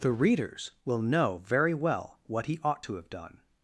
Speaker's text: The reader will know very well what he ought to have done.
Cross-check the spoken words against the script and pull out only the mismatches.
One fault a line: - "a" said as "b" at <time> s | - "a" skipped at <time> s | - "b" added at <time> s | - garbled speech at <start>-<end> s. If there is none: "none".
- "reader" said as "readers" at 0.1 s